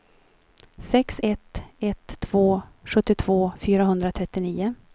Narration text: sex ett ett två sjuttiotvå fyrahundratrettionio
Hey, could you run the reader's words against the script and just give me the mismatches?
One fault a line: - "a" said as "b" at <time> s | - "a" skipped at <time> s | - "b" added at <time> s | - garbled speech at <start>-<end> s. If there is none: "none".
none